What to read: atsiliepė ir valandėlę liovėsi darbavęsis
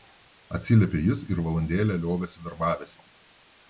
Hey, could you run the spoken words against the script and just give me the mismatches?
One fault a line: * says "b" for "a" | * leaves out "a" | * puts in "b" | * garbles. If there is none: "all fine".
* puts in "jis"